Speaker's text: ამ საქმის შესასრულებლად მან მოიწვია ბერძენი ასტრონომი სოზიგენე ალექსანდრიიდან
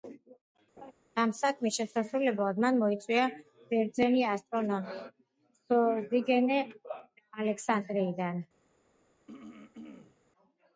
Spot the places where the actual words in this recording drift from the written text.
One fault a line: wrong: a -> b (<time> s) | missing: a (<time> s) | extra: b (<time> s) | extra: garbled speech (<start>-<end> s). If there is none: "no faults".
no faults